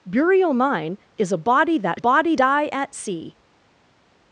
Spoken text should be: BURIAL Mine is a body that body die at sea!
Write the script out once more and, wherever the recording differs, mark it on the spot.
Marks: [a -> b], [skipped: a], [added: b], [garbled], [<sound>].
BURIAL Mine is a body that body die at sea!